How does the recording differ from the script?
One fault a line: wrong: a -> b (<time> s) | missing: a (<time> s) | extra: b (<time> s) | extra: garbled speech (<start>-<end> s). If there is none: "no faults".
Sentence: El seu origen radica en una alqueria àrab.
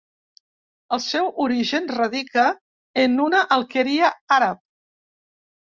no faults